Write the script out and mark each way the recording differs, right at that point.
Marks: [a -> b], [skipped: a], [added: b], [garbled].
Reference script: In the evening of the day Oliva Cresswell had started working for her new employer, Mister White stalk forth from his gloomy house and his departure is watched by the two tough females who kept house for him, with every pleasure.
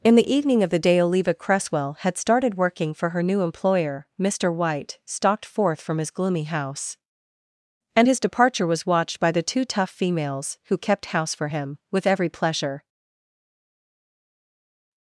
In the evening of the day Oliva Cresswell had started working for her new employer, Mister White [stalk -> stalked] forth from his gloomy house and his departure [is -> was] watched by the two tough females who kept house for him, with every pleasure.